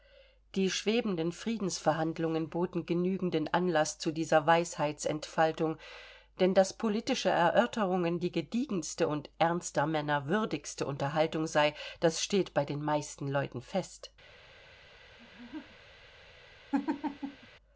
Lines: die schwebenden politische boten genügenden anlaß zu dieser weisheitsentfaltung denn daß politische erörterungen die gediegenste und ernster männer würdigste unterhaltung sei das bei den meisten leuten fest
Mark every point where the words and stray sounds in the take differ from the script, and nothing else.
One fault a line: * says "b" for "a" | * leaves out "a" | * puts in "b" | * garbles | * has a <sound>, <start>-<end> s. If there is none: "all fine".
* says "friedensverhandlungen" for "politische"
* puts in "steht"
* has a laugh, 15.2-16.0 s
* has a laugh, 16.7-17.5 s